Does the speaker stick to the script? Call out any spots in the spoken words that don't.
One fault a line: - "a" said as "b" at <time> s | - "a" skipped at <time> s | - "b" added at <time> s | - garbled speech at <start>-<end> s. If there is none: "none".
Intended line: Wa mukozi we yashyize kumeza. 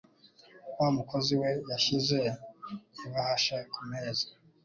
- "ibahasha" added at 3.1 s